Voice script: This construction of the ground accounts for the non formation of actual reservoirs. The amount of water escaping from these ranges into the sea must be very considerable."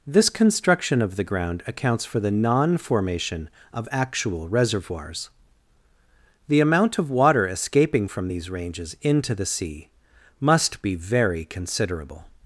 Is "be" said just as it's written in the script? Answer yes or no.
yes